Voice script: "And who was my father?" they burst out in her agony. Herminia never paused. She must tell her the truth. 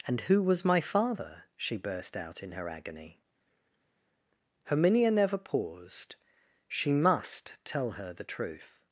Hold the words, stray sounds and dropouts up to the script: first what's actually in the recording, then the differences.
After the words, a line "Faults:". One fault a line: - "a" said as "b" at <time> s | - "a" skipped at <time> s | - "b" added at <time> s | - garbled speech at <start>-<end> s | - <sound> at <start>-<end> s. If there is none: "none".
"And who was my father?" she burst out in her agony. Herminia never paused. She must tell her the truth.
Faults:
- "they" said as "she" at 1.6 s